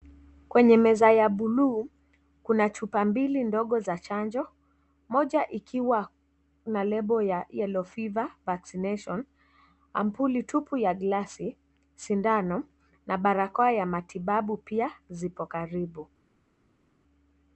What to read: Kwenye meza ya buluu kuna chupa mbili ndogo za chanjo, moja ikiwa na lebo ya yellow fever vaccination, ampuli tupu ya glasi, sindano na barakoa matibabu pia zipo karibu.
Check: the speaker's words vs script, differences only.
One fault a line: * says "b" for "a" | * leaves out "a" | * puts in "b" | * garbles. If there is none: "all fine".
* puts in "ya"